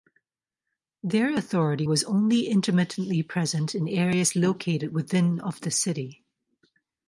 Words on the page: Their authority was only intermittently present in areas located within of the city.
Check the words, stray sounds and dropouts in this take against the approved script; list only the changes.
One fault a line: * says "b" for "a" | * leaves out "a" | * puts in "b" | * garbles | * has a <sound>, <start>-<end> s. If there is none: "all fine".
all fine